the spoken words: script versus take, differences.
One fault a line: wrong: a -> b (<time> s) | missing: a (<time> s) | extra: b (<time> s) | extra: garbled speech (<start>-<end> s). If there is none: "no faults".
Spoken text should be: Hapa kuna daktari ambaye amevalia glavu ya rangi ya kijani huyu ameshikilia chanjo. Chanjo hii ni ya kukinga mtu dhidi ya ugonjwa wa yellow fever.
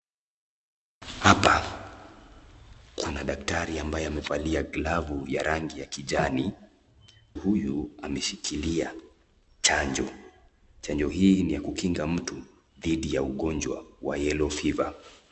no faults